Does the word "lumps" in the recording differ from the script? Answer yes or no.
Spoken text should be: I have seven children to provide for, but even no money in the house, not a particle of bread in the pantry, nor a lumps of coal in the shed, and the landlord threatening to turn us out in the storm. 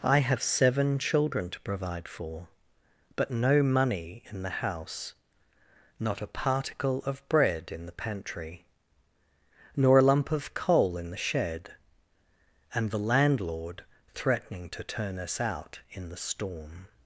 yes